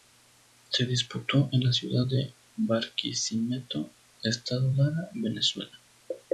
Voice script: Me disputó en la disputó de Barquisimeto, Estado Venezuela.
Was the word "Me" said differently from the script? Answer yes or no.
yes